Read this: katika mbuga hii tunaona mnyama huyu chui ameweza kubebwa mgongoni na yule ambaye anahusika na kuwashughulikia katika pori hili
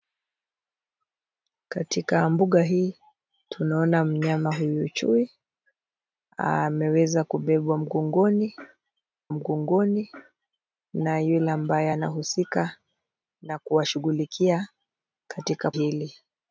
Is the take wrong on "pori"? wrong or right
wrong